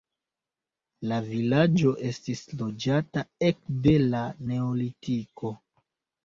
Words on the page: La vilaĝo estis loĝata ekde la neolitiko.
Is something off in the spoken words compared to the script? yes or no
no